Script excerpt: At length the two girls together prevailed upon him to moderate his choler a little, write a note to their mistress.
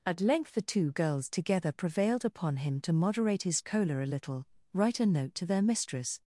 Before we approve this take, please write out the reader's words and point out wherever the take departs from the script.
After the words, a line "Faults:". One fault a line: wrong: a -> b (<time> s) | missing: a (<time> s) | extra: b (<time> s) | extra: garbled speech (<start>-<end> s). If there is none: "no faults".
At length the two girls together prevailed upon him to moderate his choler a little, write a note to their mistress.
Faults:
no faults